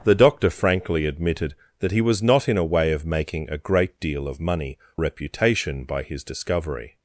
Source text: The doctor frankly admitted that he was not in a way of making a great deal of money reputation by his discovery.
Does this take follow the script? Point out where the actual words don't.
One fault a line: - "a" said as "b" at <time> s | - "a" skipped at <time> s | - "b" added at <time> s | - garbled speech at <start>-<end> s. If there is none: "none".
none